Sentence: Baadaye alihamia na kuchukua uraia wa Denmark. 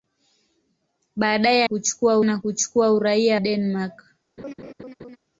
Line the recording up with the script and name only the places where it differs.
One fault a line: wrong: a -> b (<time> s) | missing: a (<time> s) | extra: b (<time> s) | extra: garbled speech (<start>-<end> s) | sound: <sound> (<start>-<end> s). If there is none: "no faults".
wrong: alihamia -> kuchukua (1.6 s)
missing: wa (3.4 s)
sound: laugh (4.4-5.2 s)